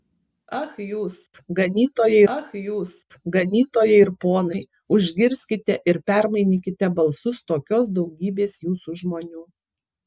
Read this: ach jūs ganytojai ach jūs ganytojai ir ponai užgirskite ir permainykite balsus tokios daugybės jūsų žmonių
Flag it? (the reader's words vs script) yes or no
no